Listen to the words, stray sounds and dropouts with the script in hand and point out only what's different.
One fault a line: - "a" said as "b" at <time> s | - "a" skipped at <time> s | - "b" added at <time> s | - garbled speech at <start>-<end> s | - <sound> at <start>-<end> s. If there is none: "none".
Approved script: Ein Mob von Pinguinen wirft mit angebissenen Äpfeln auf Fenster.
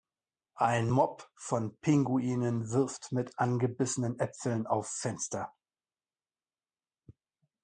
none